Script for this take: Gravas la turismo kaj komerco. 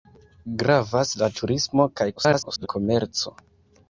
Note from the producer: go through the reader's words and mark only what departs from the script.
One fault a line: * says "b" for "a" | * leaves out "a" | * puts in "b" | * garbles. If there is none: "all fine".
* garbles